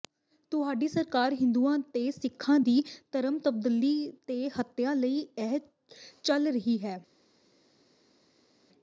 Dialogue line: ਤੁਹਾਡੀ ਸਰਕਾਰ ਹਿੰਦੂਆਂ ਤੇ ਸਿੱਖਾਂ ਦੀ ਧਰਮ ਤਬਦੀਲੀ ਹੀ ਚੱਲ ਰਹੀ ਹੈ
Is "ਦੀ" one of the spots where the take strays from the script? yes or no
no